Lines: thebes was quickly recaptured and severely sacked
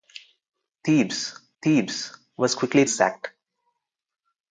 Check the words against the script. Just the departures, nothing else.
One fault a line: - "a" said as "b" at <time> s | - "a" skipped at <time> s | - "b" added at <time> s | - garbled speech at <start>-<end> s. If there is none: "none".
- "thebes" added at 1.6 s
- "recaptured and severely" skipped at 2.8 s